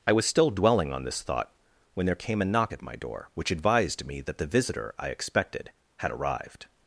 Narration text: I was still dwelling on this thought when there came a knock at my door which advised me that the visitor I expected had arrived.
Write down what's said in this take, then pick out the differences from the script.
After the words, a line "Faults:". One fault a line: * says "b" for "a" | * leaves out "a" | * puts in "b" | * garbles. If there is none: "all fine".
I was still dwelling on this thought when there came a knock at my door which advised me that the visitor I expected had arrived.
Faults:
all fine